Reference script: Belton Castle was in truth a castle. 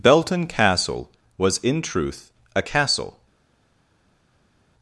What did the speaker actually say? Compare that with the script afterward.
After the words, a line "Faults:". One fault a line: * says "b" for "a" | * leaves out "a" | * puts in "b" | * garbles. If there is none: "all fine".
Belton Castle was in truth a castle.
Faults:
all fine